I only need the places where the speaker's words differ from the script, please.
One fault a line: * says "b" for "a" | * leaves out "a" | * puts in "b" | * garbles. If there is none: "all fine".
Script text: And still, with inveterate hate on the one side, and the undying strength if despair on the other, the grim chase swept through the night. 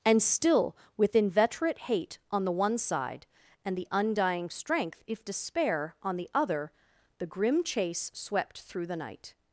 all fine